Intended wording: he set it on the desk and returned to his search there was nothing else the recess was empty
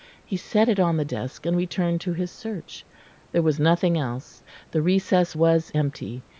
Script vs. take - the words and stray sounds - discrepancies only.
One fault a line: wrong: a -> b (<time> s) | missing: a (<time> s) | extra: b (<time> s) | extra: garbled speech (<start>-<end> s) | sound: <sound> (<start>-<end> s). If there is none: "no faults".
no faults